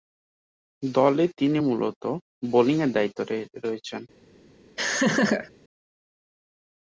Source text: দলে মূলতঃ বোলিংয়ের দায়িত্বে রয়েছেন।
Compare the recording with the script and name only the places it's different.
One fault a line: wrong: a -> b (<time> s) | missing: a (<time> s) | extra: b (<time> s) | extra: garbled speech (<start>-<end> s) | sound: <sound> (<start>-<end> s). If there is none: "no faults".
extra: তিনি (1.4 s)
sound: laugh (4.8-5.5 s)